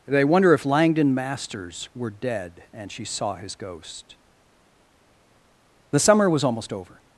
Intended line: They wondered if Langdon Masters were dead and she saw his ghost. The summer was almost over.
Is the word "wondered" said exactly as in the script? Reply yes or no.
no